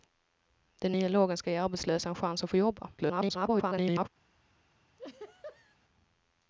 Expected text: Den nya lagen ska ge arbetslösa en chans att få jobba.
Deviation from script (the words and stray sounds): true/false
true